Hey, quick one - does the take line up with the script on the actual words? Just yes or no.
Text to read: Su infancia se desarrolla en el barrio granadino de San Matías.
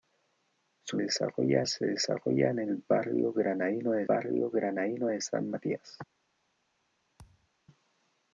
no